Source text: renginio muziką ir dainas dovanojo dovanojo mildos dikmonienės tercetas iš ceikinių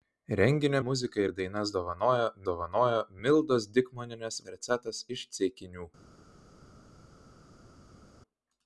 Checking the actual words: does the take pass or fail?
pass